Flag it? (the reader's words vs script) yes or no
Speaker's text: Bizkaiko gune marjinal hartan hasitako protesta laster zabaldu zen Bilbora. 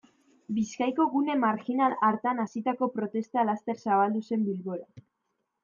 no